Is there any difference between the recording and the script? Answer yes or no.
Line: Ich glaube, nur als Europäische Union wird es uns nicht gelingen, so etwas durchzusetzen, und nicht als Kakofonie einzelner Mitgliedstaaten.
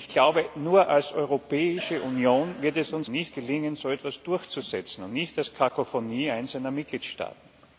no